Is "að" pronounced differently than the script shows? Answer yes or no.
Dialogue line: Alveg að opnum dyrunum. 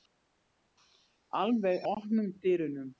yes